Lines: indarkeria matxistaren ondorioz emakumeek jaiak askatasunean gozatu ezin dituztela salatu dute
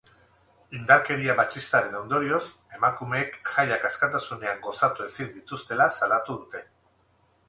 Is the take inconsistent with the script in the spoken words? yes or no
no